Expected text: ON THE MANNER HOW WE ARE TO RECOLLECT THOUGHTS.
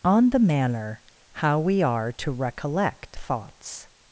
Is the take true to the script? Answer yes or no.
yes